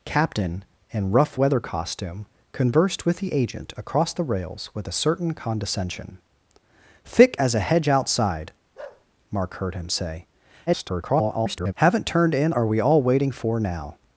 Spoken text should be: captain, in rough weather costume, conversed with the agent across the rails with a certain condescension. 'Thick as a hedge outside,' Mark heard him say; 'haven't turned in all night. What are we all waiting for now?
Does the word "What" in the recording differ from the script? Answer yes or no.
yes